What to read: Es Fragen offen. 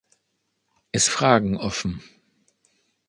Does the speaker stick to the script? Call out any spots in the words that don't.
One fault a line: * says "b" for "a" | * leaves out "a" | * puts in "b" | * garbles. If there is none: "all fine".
all fine